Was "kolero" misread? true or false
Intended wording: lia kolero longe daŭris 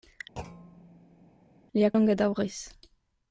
true